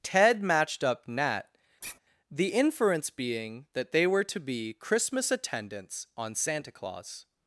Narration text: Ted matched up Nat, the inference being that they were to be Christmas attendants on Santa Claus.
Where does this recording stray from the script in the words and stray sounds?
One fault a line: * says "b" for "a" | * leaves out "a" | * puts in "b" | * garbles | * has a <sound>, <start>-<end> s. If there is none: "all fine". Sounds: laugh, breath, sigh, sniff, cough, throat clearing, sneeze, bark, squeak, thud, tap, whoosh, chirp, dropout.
* has a sigh, 1.8-2.0 s